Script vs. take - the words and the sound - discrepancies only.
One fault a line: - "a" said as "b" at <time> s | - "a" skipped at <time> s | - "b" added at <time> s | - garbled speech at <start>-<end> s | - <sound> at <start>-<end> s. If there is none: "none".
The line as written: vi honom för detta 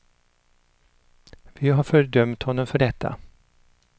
- "har fördömt" added at 1.7 s